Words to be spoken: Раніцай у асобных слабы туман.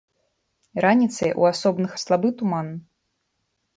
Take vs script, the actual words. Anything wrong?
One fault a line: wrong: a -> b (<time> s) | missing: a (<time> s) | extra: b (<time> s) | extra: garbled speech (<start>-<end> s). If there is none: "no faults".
no faults